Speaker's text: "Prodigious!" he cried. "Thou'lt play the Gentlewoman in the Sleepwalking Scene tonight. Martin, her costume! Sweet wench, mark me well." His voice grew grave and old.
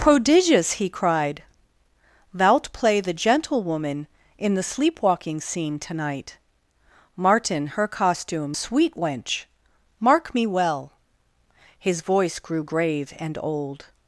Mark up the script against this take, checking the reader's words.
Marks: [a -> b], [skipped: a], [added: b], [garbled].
"Prodigious!" he cried. "Thou'lt play the Gentlewoman in the Sleepwalking Scene tonight. Martin, her costume! Sweet wench, mark me well." His voice grew grave and old.